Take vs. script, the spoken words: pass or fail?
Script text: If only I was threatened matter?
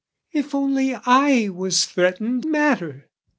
pass